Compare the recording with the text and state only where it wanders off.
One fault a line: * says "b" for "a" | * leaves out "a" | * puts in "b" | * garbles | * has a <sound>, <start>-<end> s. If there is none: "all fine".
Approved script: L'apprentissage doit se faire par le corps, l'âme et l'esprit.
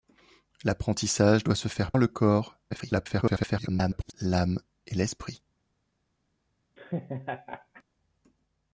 * leaves out "par"
* garbles
* has a laugh, 6.8-7.8 s